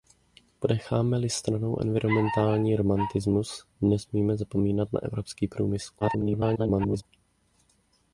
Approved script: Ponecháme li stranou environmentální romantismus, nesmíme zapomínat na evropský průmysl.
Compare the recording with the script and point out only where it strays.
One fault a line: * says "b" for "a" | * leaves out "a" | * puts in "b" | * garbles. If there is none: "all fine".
* garbles